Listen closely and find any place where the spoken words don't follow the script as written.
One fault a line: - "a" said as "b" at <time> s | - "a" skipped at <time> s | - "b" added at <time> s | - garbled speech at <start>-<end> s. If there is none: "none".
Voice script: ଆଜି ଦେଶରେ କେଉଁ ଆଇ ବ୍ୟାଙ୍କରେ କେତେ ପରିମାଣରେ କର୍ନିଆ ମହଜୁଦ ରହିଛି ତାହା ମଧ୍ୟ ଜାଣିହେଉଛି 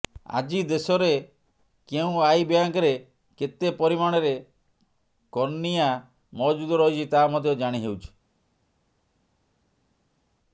none